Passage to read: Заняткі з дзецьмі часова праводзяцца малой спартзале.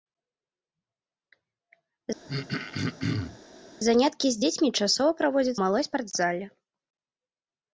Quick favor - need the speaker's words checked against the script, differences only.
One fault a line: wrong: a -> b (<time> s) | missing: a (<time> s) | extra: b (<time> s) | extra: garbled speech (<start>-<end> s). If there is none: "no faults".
no faults